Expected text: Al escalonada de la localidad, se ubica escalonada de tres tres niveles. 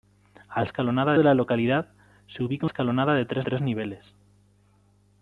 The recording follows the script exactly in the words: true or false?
true